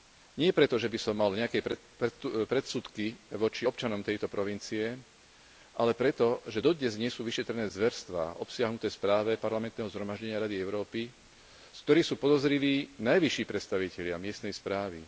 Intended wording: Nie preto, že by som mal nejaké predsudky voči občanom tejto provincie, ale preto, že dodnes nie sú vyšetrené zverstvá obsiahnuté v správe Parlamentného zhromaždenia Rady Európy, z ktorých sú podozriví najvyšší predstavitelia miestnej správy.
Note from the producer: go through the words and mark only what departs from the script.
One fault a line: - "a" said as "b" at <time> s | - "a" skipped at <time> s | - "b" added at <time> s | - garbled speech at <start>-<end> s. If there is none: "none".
none